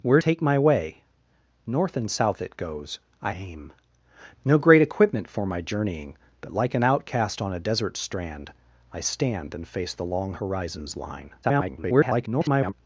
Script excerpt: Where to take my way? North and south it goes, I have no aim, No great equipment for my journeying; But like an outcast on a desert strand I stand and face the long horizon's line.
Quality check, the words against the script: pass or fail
fail